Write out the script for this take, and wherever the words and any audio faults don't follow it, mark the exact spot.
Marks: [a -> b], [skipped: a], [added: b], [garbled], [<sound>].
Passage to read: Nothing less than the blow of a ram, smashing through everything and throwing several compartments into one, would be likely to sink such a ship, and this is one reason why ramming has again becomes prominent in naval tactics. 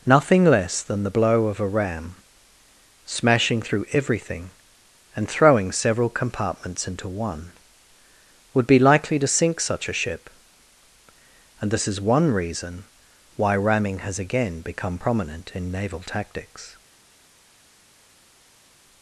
Nothing less than the blow of a ram, smashing through everything and throwing several compartments into one, would be likely to sink such a ship, and this is one reason why ramming has again [becomes -> become] prominent in naval tactics.